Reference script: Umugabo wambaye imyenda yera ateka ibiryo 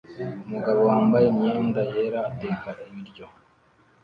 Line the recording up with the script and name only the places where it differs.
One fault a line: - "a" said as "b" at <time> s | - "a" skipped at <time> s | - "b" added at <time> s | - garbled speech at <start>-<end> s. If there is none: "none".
none